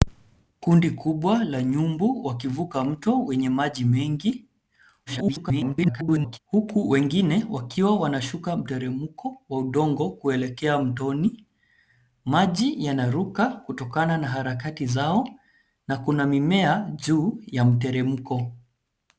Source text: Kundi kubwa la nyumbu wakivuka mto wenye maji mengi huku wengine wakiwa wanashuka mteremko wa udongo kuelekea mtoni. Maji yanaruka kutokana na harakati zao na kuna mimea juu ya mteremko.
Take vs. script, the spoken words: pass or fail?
fail